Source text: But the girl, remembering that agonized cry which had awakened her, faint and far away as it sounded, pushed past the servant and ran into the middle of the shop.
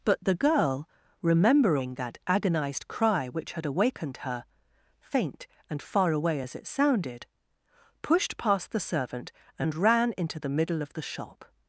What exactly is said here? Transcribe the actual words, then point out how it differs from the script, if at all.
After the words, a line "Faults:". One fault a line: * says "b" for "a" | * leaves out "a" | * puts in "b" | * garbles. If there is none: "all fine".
But the girl, remembering that agonized cry which had awakened her, faint and far away as it sounded, pushed past the servant and ran into the middle of the shop.
Faults:
all fine